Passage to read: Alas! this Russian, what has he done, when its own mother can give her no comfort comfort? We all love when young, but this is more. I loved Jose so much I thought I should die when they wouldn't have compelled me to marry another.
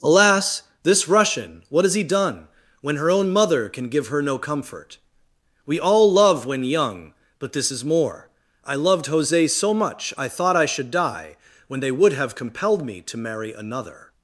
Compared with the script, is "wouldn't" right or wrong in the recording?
wrong